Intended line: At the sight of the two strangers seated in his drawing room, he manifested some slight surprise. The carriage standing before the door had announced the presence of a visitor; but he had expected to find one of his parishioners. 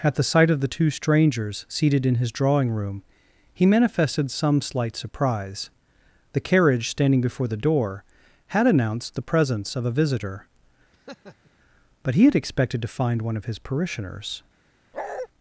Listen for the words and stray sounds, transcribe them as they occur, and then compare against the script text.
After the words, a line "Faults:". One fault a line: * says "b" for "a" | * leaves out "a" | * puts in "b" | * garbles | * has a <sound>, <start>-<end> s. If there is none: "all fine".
At the sight of the two strangers seated in his drawing room, he manifested some slight surprise. The carriage standing before the door had announced the presence of a visitor; but he had expected to find one of his parishioners.
Faults:
* has a laugh, 10.9-11.5 s
* has a bark, 14.9-15.3 s